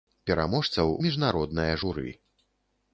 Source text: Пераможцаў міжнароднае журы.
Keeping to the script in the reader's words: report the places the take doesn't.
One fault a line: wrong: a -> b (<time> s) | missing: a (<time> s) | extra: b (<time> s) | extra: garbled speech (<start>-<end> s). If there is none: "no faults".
no faults